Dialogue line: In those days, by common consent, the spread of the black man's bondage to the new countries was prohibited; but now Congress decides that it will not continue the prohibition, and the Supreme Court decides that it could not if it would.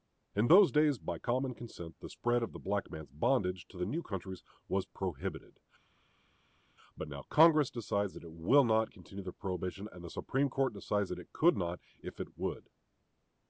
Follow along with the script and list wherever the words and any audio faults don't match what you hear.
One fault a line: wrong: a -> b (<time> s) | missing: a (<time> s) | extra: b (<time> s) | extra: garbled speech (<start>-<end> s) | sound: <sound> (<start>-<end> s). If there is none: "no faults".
no faults